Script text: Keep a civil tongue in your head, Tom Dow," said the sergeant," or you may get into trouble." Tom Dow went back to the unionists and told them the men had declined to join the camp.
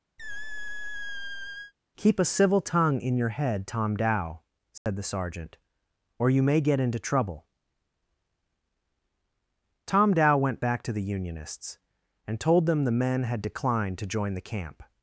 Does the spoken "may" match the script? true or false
true